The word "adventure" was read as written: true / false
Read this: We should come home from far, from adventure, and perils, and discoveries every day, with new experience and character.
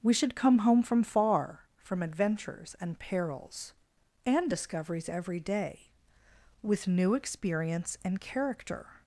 false